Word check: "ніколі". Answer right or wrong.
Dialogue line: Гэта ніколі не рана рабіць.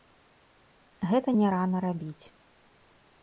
wrong